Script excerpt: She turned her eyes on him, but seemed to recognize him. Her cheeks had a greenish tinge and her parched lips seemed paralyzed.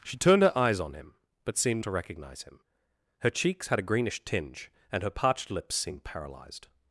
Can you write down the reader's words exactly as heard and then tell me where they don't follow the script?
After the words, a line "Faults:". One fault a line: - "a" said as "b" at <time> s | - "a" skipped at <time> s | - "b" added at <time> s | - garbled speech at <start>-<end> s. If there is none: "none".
She turned her eyes on him, but seemed to recognize him. Her cheeks had a greenish tinge and her parched lips seemed paralyzed.
Faults:
none